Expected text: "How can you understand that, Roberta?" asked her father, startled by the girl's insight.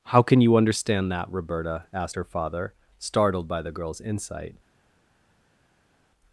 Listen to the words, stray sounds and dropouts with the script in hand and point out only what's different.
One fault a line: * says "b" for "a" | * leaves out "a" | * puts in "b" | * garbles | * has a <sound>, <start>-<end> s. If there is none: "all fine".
all fine